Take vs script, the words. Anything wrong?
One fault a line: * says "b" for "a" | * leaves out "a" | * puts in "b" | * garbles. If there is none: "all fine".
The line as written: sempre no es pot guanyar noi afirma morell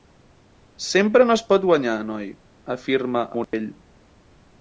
all fine